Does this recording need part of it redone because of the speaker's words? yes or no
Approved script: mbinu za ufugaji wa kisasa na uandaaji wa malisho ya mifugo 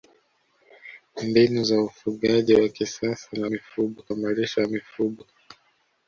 yes